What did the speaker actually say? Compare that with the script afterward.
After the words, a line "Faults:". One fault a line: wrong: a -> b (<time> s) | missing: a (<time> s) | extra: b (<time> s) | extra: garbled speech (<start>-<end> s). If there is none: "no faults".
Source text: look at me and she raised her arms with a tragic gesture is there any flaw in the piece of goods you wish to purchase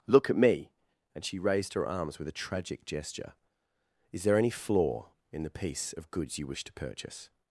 look at me and she raised her arms with a tragic gesture is there any flaw in the piece of goods you wish to purchase
Faults:
no faults